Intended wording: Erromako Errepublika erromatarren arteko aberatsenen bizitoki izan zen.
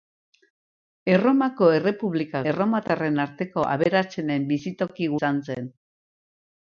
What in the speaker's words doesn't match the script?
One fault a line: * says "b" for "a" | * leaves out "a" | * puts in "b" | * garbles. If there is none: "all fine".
all fine